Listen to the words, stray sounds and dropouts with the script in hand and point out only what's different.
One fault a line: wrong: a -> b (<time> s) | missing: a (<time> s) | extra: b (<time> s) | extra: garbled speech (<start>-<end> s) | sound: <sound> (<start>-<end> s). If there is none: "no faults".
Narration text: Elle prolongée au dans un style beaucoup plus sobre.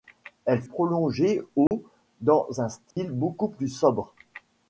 sound: dropout (1.7-1.7 s)
sound: dropout (2.9-3.0 s)